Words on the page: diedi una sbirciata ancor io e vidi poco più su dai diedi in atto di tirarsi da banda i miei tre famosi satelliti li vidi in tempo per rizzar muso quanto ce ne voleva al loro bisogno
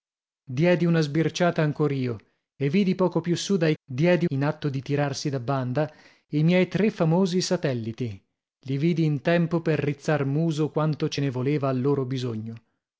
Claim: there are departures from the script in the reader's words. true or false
false